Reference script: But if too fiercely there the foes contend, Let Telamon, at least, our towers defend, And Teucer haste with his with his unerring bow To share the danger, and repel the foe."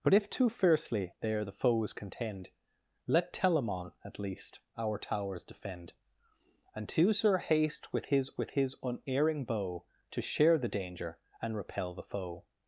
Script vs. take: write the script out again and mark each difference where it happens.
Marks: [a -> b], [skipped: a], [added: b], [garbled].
But if too fiercely there the foes contend, Let Telamon, at least, our towers defend, And Teucer haste with his with his unerring bow To share the danger, and repel the foe."